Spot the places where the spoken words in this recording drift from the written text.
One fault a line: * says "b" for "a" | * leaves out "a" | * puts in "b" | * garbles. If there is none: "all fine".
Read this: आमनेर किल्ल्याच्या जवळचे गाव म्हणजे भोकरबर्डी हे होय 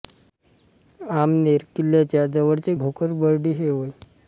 * leaves out "गाव म्हणजे"